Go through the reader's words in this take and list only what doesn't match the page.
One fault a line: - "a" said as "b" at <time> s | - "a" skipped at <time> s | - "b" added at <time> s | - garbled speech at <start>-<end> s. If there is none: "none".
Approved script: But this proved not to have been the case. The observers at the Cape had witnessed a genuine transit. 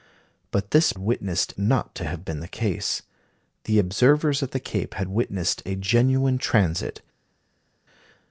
- "proved" said as "witnessed" at 1.0 s